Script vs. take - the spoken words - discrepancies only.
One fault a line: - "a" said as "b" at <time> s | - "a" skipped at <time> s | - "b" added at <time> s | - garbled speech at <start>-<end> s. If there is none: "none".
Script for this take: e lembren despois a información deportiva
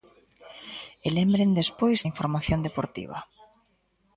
none